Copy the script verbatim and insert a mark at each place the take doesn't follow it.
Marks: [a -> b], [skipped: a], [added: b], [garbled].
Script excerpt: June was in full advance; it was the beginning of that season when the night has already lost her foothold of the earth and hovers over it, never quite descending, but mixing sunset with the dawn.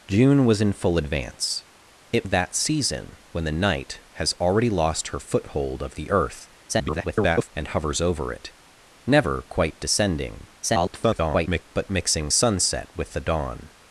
June was in full advance; it [skipped: was the beginning] of that season when the night has already lost her foothold of the earth [garbled] and hovers over it, never quite descending, [garbled] but mixing sunset with the dawn.